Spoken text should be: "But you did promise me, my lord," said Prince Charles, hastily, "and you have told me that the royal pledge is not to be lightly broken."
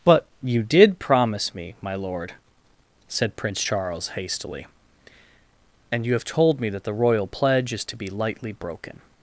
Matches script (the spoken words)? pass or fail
fail